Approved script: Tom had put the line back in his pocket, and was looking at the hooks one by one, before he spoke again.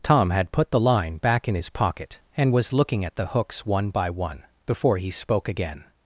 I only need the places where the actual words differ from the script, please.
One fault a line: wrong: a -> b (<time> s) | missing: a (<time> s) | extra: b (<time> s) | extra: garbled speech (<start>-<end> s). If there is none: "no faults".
no faults